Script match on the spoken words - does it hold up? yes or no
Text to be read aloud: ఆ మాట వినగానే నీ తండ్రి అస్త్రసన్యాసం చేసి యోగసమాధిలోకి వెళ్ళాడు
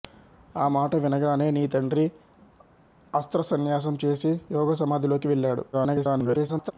no